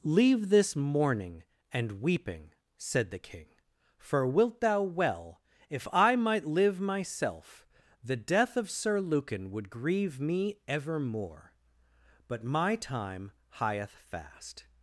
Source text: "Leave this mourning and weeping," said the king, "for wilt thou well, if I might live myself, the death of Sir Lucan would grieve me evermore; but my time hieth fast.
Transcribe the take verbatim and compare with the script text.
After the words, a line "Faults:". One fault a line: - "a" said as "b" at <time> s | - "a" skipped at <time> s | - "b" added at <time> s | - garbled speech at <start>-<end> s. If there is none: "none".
"Leave this mourning and weeping," said the king, "for wilt thou well, if I might live myself, the death of Sir Lucan would grieve me evermore; but my time hieth fast.
Faults:
none